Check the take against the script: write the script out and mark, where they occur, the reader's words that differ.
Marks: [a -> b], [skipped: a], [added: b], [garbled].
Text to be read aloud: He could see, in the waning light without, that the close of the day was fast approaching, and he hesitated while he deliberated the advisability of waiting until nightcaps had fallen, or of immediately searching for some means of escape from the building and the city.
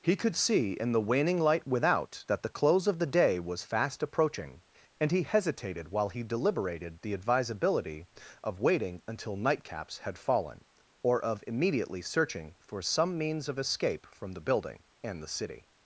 He could see, in the waning light without, that the close of the day was fast approaching, and he hesitated while he deliberated the advisability of waiting until nightcaps had fallen, or of immediately searching for some means of escape from the building and the city.